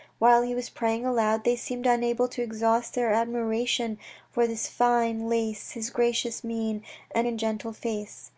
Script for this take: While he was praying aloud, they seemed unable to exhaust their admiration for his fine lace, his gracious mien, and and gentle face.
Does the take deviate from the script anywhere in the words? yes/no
no